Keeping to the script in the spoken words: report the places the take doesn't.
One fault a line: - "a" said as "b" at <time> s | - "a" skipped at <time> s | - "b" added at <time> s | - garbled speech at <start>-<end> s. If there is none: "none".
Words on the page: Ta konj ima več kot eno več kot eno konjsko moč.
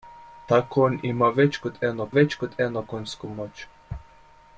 none